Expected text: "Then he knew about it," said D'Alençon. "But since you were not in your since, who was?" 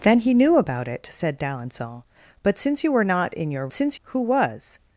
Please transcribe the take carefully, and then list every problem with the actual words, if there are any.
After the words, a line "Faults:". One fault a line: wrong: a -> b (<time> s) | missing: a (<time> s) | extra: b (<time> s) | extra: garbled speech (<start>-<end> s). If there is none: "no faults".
"Then he knew about it," said D'Alençon. "But since you were not in your since, who was?"
Faults:
no faults